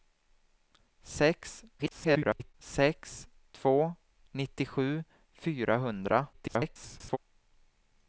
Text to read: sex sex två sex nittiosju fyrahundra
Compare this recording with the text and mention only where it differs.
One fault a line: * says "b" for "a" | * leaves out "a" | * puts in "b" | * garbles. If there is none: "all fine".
* garbles
* leaves out "sex"
* garbles